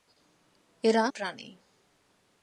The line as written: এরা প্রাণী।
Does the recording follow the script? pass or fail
pass